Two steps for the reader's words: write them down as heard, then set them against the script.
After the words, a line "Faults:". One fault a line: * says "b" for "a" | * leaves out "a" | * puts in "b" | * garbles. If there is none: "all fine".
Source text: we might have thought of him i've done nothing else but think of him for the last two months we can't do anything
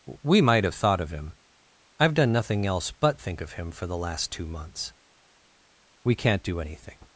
we might have thought of him i've done nothing else but think of him for the last two months we can't do anything
Faults:
all fine